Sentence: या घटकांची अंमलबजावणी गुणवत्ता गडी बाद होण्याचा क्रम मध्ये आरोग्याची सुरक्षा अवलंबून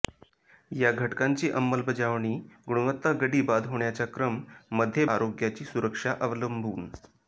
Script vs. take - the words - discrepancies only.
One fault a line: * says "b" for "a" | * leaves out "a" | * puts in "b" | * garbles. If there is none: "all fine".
all fine